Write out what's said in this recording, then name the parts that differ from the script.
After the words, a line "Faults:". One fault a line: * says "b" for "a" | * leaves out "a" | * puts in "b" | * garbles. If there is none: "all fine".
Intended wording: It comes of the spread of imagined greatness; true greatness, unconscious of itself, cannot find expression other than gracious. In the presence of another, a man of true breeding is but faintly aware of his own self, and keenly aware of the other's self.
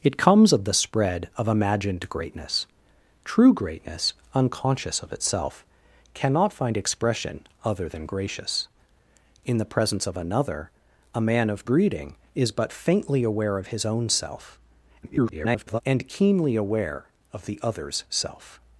It comes of the spread of imagined greatness; true greatness, unconscious of itself, cannot find expression other than gracious. In the presence of another, a man of breeding is but faintly aware of his own self, [garbled] and keenly aware of the other's self.
Faults:
* leaves out "true"
* garbles